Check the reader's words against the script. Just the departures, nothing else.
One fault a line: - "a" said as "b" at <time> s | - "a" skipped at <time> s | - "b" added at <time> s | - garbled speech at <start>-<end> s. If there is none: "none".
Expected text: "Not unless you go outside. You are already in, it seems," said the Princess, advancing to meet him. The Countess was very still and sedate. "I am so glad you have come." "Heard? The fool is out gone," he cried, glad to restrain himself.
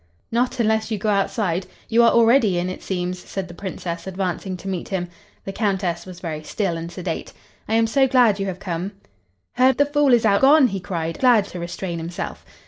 none